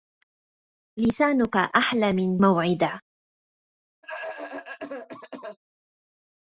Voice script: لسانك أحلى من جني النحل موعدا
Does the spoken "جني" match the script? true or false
false